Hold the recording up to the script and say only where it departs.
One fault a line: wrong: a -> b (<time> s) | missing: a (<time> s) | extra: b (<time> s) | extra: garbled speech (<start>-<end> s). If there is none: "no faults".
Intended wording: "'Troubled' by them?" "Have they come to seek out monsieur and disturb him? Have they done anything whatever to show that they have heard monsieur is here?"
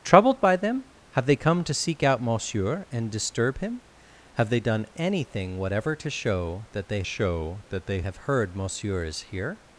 extra: show that they (7.0 s)